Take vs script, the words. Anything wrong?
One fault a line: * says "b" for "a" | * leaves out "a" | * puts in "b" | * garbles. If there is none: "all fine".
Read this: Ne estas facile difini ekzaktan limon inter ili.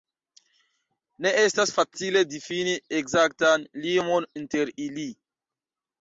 all fine